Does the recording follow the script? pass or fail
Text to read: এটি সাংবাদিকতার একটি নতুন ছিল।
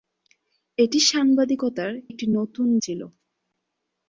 pass